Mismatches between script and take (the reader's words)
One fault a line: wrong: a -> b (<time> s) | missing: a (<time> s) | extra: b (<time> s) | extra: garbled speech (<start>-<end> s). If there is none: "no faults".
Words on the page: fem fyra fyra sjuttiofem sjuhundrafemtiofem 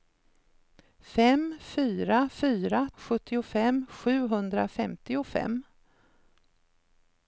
no faults